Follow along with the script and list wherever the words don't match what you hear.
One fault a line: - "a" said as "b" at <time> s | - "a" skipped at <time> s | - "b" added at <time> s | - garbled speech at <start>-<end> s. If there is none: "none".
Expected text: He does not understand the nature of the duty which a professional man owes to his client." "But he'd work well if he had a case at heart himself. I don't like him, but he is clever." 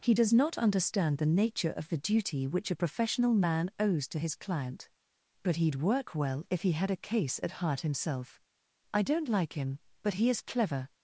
none